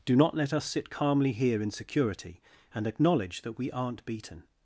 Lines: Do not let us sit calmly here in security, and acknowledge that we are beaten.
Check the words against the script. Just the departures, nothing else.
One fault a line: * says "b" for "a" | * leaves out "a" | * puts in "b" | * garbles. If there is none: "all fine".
* says "aren't" for "are"